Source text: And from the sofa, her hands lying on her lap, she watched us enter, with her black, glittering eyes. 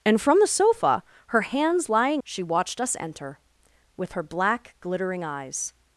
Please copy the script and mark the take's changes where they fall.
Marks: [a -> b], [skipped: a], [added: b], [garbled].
And from the sofa, her hands lying [skipped: on her lap,] she watched us enter, with her black, glittering eyes.